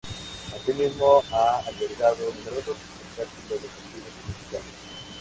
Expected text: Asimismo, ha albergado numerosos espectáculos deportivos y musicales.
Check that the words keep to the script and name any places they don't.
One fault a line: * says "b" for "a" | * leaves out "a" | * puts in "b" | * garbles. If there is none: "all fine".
all fine